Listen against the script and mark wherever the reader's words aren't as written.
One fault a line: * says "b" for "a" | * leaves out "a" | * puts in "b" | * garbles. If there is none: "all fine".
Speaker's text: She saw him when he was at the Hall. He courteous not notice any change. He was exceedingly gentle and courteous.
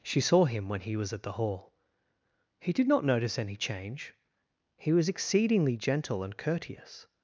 * says "did" for "courteous"